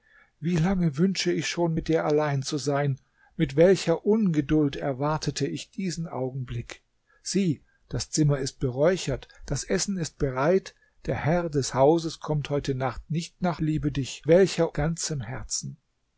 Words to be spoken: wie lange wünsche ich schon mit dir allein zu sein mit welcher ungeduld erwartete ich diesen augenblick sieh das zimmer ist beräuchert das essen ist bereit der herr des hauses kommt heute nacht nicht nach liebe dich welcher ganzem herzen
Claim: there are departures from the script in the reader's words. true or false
false